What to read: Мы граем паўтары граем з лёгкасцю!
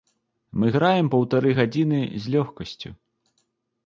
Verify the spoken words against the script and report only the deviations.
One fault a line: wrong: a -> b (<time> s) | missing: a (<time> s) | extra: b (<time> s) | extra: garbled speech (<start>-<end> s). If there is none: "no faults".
wrong: граем -> гадзіны (1.6 s)